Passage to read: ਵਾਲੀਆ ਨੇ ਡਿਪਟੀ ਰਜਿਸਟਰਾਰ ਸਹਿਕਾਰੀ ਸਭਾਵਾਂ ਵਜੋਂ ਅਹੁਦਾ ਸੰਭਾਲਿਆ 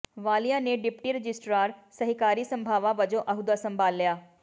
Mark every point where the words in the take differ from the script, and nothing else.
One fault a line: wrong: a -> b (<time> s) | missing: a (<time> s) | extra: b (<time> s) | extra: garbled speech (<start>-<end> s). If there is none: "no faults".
no faults